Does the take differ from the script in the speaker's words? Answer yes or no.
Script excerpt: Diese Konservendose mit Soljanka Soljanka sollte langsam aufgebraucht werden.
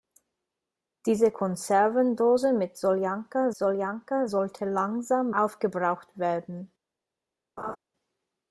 no